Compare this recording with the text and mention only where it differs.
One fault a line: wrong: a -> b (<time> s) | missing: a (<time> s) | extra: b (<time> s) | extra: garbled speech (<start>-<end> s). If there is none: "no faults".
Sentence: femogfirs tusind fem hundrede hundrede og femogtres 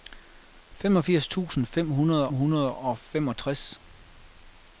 no faults